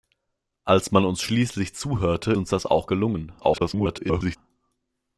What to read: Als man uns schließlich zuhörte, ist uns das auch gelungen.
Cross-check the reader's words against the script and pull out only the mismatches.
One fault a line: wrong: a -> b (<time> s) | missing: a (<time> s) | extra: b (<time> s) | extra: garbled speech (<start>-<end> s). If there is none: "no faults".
missing: ist (2.3 s)
extra: garbled speech (3.4-4.4 s)